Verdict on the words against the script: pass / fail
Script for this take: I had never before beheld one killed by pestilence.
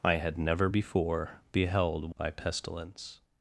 fail